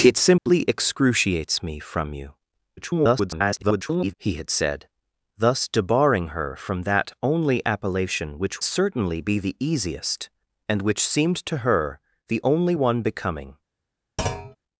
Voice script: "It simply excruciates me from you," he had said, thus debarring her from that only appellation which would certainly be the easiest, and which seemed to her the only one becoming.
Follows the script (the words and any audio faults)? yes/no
no